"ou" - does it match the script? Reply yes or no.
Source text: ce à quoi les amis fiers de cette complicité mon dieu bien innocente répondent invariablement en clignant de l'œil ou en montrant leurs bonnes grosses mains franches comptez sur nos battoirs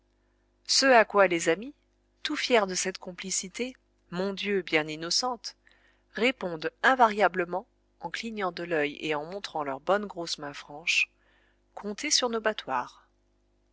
no